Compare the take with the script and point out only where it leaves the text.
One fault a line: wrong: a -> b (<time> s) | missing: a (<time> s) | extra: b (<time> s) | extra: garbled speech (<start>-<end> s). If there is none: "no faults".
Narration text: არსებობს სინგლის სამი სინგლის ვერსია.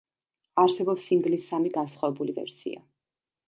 wrong: სინგლის -> განსხვავებული (1.8 s)